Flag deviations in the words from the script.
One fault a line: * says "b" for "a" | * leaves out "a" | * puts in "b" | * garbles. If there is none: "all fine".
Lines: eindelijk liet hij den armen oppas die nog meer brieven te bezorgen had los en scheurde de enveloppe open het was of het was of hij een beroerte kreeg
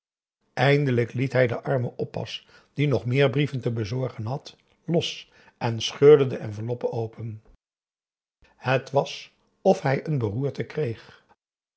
* leaves out "het was of"